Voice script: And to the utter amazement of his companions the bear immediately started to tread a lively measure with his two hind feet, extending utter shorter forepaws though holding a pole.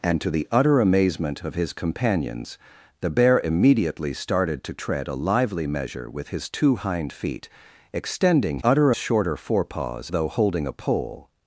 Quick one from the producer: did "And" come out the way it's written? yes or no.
yes